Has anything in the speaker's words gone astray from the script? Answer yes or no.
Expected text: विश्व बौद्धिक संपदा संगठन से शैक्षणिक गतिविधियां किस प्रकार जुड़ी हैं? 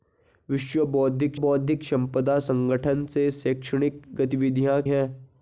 yes